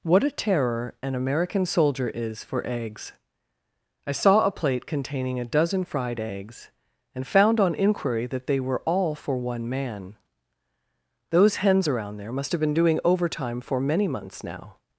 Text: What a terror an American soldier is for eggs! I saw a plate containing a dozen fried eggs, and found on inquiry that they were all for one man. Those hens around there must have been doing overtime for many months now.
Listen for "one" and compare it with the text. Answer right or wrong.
right